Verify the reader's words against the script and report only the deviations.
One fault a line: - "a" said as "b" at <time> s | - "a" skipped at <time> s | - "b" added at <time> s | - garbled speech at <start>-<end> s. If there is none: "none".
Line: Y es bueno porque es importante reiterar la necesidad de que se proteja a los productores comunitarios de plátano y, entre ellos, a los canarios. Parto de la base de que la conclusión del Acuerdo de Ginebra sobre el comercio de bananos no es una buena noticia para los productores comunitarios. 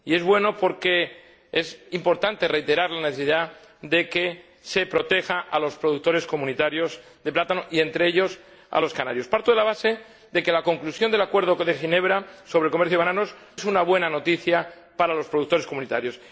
- "no" skipped at 13.4 s